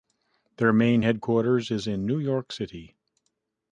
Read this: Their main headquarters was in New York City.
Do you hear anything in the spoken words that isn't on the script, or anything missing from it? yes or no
yes